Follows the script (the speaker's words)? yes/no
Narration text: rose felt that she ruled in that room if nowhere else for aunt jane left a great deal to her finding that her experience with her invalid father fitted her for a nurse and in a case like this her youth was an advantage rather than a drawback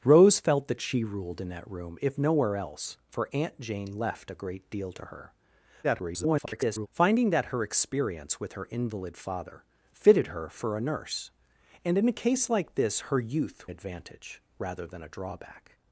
no